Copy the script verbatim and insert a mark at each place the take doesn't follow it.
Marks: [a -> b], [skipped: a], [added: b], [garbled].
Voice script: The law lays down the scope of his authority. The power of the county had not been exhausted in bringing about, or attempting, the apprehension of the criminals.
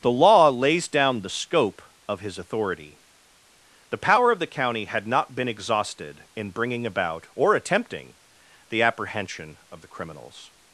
The law lays down the scope of his authority. The power of the county had not been exhausted in bringing about, or attempting, the apprehension of the criminals.